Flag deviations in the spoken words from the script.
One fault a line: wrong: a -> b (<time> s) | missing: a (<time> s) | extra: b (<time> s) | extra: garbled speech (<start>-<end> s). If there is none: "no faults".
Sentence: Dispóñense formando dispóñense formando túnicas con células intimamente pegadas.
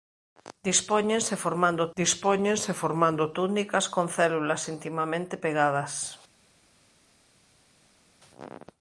no faults